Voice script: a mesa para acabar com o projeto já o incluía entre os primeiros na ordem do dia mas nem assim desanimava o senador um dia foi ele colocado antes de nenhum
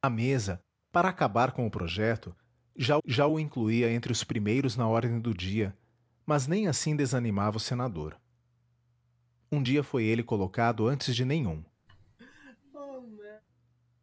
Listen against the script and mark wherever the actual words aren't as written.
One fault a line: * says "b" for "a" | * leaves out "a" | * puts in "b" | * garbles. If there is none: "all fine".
* puts in "já"